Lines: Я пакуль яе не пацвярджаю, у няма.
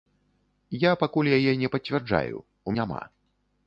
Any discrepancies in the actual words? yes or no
no